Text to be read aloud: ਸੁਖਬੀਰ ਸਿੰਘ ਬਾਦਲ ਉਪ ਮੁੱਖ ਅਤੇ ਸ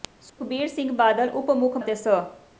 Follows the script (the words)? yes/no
yes